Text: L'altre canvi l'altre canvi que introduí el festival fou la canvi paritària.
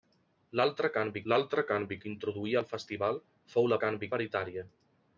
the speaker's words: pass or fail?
pass